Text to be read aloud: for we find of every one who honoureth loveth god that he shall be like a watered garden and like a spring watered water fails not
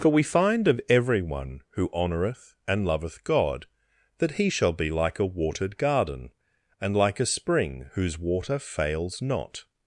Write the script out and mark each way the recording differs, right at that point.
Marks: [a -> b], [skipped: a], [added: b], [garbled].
for we find of every one who honoureth [added: and] loveth god that he shall be like a watered garden and like a spring [watered -> whose] water fails not